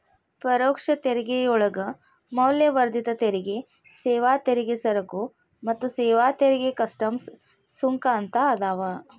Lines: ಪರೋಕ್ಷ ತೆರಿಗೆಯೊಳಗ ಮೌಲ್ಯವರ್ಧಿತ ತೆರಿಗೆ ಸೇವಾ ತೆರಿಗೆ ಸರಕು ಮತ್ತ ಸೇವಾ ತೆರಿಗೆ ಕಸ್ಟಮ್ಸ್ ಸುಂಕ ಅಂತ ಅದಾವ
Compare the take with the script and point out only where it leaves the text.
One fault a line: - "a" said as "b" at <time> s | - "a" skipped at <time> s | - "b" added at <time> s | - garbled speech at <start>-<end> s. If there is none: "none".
none